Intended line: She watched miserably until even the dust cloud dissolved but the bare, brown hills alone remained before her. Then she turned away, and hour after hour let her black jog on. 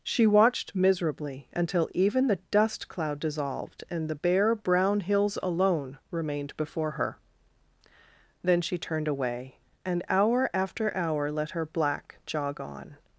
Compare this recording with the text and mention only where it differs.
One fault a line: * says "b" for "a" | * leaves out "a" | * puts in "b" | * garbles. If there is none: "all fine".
* says "and" for "but"